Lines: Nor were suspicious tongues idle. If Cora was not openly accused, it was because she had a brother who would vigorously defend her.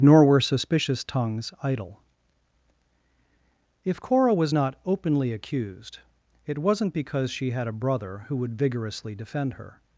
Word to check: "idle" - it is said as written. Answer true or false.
true